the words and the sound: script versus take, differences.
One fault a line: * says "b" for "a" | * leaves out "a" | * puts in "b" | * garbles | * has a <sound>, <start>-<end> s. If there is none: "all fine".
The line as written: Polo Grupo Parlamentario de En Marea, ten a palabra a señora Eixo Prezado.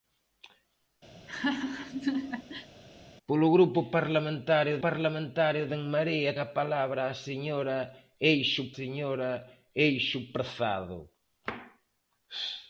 * has a laugh, 1.1-2.7 s
* puts in "Parlamentario"
* leaves out "ten"
* puts in "señora Eixo"